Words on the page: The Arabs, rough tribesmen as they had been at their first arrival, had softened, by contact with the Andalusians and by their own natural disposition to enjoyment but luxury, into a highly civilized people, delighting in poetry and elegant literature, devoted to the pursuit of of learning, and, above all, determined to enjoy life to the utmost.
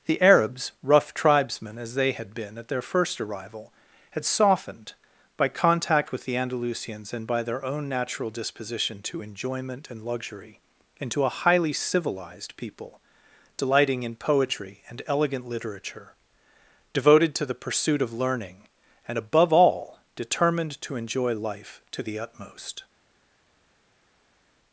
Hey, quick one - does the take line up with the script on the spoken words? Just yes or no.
no